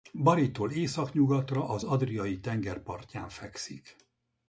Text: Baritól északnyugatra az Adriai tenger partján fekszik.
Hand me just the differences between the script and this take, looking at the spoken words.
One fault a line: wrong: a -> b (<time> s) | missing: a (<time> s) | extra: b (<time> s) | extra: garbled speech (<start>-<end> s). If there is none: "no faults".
no faults